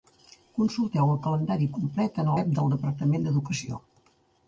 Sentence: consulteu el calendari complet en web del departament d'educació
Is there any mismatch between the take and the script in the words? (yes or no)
no